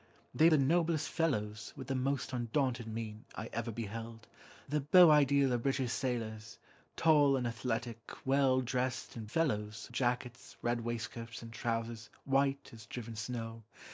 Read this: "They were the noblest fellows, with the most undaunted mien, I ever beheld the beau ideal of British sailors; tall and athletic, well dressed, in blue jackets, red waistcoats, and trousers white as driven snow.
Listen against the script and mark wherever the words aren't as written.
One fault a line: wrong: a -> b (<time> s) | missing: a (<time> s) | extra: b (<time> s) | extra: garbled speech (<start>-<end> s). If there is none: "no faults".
missing: were (0.5 s)
wrong: blue -> fellows (9.2 s)